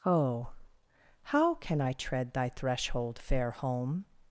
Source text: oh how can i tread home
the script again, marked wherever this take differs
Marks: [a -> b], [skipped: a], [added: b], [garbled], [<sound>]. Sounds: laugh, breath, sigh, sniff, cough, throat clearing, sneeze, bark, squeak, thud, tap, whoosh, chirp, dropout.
oh how can i tread [added: thy threshold fair] home